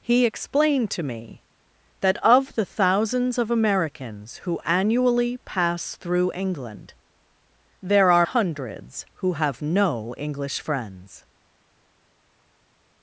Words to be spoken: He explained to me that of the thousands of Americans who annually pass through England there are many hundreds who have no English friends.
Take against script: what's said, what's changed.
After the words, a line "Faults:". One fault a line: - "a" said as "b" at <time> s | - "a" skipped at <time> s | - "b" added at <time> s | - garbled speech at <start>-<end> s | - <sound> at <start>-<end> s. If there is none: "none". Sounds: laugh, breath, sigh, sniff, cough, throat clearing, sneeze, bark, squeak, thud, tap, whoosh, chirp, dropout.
He explained to me that of the thousands of Americans who annually pass through England there are hundreds who have no English friends.
Faults:
- "many" skipped at 8.3 s